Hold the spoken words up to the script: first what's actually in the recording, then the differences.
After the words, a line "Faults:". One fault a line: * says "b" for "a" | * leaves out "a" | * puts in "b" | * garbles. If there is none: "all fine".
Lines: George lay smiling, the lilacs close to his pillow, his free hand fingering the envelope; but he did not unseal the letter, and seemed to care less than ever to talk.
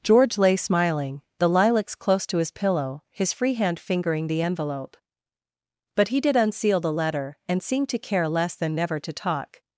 George lay smiling, the lilacs close to his pillow, his free hand fingering the envelope; but he did unseal the letter, and seemed to care less than never to talk.
Faults:
* leaves out "not"
* says "never" for "ever"